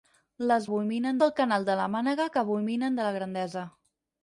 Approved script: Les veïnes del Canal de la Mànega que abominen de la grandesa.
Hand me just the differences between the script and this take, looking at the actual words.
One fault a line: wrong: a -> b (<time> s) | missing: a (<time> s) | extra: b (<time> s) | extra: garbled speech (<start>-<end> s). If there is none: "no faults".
wrong: veïnes -> abominen (0.7 s)